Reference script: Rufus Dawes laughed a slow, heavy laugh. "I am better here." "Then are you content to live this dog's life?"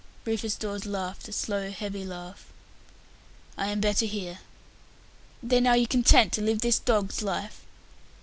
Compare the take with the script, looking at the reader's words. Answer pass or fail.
pass